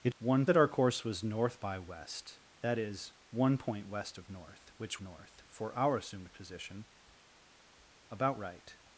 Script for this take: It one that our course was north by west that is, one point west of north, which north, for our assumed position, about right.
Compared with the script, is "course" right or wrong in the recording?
right